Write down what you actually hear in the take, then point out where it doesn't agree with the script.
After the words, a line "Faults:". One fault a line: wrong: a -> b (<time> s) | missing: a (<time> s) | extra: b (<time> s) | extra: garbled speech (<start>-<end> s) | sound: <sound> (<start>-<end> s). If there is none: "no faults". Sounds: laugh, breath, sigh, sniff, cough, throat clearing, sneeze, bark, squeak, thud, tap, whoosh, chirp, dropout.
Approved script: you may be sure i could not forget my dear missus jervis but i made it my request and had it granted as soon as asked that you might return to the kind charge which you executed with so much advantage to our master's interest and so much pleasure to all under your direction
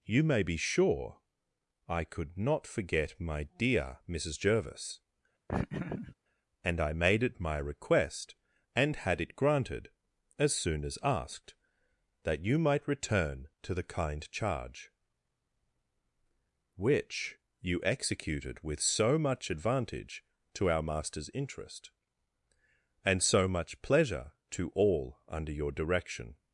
you may be sure i could not forget my dear missus jervis and i made it my request and had it granted as soon as asked that you might return to the kind charge which you executed with so much advantage to our master's interest and so much pleasure to all under your direction
Faults:
sound: laugh (5.5-6.2 s)
wrong: but -> and (6.6 s)